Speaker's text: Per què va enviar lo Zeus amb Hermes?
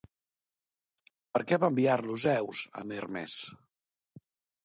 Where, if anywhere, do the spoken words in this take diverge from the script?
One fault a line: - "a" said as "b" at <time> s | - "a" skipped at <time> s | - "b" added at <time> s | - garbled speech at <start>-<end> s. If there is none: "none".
none